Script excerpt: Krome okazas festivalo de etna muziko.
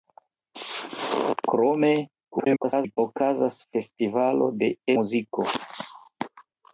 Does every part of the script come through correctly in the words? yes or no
no